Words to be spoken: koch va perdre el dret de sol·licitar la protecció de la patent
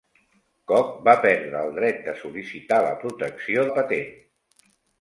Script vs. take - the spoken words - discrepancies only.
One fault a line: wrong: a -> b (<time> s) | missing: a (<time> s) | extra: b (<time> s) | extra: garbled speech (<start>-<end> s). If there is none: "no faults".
missing: de (3.7 s)